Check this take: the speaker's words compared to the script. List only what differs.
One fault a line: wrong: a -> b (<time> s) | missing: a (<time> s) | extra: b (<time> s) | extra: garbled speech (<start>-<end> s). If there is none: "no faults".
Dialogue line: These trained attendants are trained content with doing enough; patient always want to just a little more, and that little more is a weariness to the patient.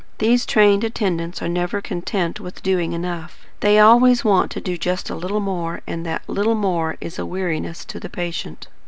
wrong: trained -> never (1.5 s)
wrong: patient -> they (3.6 s)
extra: do (4.6 s)